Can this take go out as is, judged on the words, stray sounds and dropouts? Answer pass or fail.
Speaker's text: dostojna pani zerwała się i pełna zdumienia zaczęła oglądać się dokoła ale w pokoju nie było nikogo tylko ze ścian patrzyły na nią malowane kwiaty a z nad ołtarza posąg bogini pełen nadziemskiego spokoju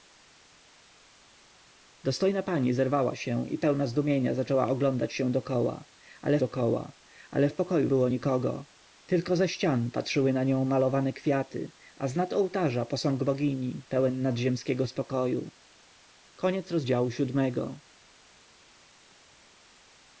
fail